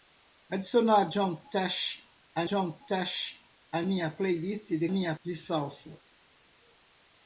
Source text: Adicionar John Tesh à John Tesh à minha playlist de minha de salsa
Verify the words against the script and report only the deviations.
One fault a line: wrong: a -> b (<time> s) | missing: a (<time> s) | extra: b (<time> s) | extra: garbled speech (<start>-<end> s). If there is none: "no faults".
no faults